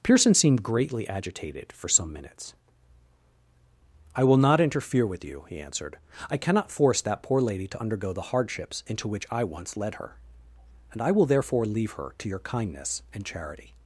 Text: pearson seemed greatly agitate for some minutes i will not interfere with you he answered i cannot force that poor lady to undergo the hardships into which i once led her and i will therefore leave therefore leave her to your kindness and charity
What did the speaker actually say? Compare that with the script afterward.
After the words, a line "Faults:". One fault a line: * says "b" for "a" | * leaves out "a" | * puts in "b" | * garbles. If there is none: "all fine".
pearson seemed greatly agitated for some minutes i will not interfere with you he answered i cannot force that poor lady to undergo the hardships into which i once led her and i will therefore leave her to your kindness and charity
Faults:
* says "agitated" for "agitate"
* leaves out "therefore leave"